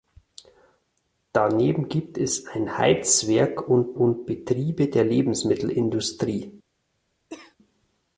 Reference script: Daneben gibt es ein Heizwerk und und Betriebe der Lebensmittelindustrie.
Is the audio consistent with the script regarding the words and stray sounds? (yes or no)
no